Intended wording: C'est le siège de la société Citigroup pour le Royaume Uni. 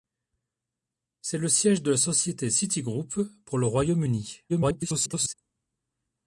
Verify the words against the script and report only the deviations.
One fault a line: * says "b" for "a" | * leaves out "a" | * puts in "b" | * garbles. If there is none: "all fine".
* garbles